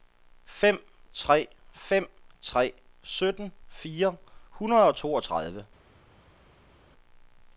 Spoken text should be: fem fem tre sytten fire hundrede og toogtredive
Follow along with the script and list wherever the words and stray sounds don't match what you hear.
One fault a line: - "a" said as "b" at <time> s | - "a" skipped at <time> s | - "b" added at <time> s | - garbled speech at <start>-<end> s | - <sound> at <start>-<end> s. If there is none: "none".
- "tre" added at 1.1 s